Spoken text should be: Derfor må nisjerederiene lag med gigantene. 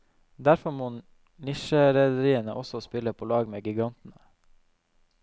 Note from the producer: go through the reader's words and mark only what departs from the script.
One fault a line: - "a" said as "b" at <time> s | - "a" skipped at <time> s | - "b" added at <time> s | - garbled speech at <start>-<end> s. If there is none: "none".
- "også spille på" added at 2.6 s